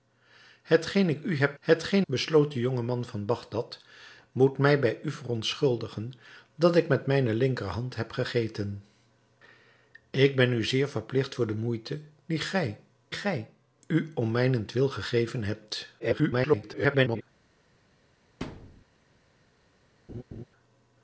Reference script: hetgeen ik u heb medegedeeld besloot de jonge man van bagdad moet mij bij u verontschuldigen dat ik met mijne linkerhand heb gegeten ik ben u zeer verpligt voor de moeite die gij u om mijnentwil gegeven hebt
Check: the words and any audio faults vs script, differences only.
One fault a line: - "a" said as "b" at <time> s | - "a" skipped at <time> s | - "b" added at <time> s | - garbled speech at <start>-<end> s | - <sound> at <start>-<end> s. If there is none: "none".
- "medegedeeld" said as "hetgeen" at 1.6 s
- "gij" added at 13.1 s
- garbled speech at 16.0-17.2 s
- thud at 18.4-18.8 s
- laugh at 20.1-20.4 s